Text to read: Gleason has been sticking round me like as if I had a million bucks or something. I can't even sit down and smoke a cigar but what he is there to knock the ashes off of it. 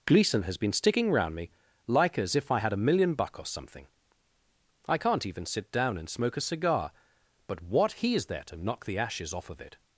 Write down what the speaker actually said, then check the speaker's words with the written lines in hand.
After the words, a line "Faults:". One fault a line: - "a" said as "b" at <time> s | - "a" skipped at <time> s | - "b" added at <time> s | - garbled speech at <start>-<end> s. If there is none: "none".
Gleason has been sticking round me like as if I had a million buck or something. I can't even sit down and smoke a cigar but what he is there to knock the ashes off of it.
Faults:
- "bucks" said as "buck" at 3.1 s